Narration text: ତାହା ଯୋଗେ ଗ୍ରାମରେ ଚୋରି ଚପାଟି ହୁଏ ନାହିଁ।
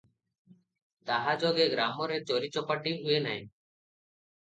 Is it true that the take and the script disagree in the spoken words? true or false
false